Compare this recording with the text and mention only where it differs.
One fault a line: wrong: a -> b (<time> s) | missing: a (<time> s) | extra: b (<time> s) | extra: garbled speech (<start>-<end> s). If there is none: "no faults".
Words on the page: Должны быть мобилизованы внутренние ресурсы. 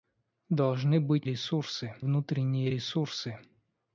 wrong: мобилизованы -> ресурсы (1.2 s)